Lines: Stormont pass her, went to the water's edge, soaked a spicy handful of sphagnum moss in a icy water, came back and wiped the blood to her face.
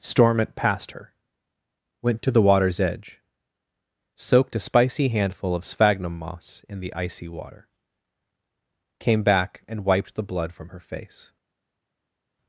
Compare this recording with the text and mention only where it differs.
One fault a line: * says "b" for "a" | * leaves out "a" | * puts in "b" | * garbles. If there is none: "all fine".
* says "passed" for "pass"
* says "the" for "a"
* says "from" for "to"